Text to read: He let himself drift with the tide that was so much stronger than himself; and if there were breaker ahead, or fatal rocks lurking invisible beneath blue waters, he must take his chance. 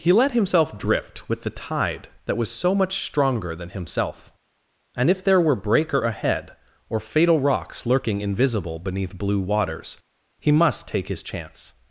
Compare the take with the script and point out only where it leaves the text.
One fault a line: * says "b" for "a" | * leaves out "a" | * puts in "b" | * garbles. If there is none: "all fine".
all fine